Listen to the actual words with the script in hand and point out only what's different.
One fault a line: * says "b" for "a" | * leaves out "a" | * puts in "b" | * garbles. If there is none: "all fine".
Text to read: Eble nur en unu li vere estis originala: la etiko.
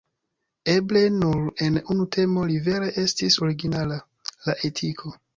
* puts in "temo"